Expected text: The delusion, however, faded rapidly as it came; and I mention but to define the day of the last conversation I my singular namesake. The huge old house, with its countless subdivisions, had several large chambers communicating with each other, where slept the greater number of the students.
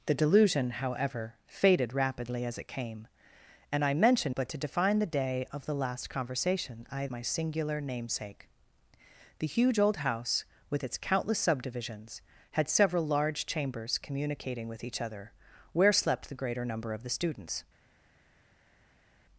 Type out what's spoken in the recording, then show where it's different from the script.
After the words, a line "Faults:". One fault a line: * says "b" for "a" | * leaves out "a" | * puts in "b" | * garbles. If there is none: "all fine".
The delusion, however, faded rapidly as it came; and I mention but to define the day of the last conversation I my singular namesake. The huge old house, with its countless subdivisions, had several large chambers communicating with each other, where slept the greater number of the students.
Faults:
all fine